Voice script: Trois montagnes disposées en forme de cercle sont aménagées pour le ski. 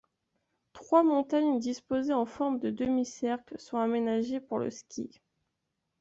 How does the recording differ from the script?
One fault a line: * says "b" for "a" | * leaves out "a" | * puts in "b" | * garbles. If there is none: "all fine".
* puts in "demi"